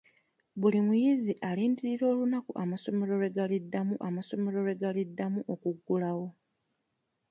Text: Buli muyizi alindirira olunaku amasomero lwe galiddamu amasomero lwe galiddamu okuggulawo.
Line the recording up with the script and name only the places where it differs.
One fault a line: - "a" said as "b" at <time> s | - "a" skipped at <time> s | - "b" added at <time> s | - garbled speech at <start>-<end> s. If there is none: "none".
none